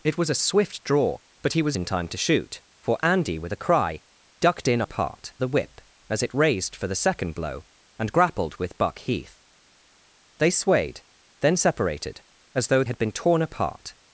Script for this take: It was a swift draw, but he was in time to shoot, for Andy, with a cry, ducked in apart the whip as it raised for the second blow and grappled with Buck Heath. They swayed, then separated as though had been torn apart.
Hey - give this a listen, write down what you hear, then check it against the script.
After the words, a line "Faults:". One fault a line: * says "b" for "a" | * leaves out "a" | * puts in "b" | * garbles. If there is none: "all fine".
It was a swift draw, but he was in time to shoot, for Andy, with a cry, ducked in apart the whip as it raised for the second blow and grappled with Buck Heath. They swayed, then separated as though had been torn apart.
Faults:
all fine